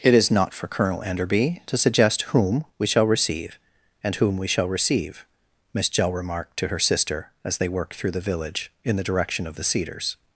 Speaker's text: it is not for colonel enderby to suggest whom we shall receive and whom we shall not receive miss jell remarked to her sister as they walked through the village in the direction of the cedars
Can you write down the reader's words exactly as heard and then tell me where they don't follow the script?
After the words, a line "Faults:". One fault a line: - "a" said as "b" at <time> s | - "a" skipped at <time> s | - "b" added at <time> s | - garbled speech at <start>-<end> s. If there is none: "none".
it is not for colonel enderby to suggest whom we shall receive and whom we shall receive miss jell remarked to her sister as they worked through the village in the direction of the cedars
Faults:
- "not" skipped at 4.7 s
- "walked" said as "worked" at 7.7 s